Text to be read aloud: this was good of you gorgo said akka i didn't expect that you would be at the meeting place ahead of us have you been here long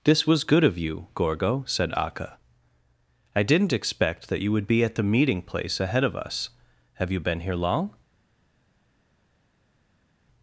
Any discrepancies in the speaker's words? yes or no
no